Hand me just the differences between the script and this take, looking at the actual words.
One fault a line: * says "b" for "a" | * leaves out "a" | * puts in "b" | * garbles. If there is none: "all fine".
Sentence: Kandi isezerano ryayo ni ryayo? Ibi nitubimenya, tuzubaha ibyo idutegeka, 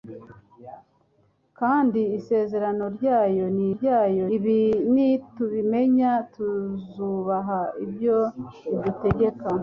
all fine